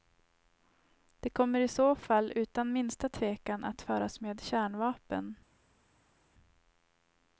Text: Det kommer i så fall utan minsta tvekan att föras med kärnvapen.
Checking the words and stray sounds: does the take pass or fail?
pass